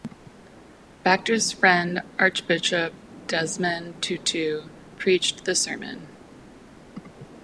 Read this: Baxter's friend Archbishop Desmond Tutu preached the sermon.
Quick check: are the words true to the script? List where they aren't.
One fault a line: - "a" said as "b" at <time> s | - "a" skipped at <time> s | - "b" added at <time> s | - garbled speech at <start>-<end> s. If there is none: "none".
none